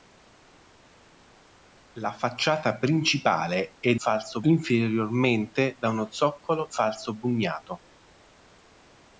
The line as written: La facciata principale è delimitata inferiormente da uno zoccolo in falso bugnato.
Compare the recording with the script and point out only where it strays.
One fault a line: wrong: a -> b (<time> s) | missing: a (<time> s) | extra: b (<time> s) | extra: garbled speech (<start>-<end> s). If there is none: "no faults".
wrong: delimitata -> falso (3.9 s)
missing: in (6.7 s)